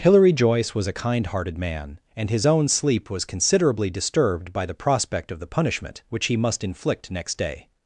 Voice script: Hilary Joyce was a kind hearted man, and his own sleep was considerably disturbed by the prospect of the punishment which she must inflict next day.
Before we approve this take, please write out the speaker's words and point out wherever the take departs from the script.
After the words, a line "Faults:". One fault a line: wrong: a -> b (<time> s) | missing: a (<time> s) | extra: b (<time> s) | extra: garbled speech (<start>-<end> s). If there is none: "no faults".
Hilary Joyce was a kind hearted man, and his own sleep was considerably disturbed by the prospect of the punishment which he must inflict next day.
Faults:
wrong: she -> he (6.3 s)